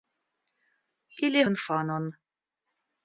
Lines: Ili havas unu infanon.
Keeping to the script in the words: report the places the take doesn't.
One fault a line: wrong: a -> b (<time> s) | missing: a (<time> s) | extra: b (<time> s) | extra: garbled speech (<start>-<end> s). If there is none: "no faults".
missing: havas unu (1.4 s)